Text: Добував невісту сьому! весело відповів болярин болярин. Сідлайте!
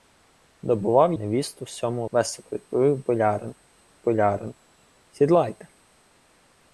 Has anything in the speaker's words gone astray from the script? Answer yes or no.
no